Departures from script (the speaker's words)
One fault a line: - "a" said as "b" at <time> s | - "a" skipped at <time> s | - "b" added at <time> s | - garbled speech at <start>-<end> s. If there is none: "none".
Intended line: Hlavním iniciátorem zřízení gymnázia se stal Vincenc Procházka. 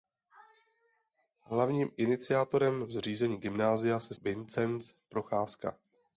- "stal" skipped at 4.1 s